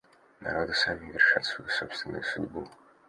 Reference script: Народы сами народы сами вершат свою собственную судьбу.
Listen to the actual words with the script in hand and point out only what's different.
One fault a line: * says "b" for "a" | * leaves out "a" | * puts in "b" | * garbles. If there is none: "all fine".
* leaves out "народы сами"